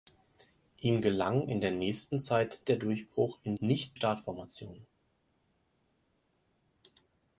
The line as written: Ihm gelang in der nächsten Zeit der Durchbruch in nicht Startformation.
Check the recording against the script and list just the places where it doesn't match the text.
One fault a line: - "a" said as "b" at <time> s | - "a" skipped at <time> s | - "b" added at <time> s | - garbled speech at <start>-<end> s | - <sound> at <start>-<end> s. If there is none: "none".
none